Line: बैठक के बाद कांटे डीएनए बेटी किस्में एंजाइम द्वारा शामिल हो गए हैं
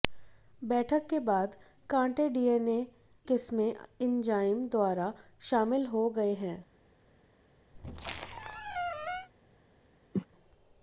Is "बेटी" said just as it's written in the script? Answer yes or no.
no